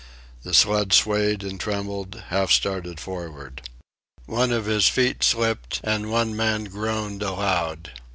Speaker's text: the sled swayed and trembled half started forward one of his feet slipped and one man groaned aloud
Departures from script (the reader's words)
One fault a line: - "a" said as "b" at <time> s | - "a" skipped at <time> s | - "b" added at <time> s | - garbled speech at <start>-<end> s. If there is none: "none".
none